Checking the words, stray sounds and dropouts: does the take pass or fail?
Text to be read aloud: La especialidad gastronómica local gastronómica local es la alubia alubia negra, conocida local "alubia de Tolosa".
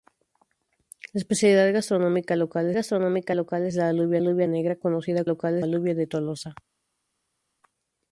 pass